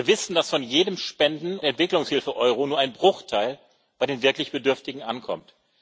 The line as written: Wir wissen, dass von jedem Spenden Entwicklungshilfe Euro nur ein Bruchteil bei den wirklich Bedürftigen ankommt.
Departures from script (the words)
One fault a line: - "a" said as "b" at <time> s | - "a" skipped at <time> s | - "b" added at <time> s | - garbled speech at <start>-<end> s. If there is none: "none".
none